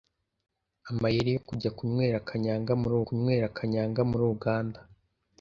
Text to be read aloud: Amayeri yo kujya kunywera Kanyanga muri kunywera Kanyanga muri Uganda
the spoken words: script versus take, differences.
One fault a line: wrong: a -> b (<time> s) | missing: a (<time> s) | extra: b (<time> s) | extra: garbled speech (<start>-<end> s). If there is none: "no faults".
no faults